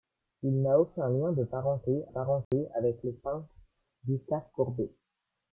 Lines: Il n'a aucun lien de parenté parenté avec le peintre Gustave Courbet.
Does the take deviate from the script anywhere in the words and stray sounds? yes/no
yes